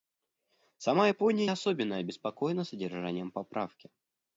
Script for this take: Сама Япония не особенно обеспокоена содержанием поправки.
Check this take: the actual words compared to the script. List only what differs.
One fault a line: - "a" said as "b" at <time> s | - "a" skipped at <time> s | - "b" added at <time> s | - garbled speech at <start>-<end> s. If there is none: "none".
- "не" skipped at 1.5 s